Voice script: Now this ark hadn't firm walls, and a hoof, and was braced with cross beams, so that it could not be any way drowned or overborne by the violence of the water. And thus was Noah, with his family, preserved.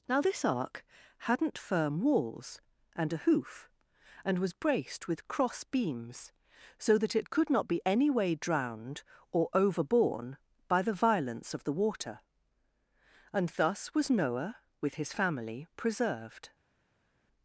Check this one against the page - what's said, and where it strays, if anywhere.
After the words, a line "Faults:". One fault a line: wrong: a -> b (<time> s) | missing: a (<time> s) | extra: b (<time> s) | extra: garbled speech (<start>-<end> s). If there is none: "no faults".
Now this ark hadn't firm walls, and a hoof, and was braced with cross beams, so that it could not be any way drowned or overborne by the violence of the water. And thus was Noah, with his family, preserved.
Faults:
no faults